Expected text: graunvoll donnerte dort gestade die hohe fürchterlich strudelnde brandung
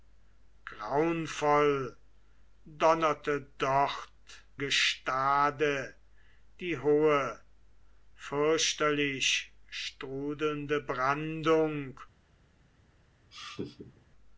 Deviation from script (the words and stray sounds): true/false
true